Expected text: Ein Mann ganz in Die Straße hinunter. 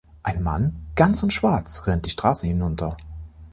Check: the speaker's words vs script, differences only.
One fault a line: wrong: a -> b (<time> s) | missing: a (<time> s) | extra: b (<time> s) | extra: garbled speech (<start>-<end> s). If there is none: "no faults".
extra: Schwarz rennt (1.3 s)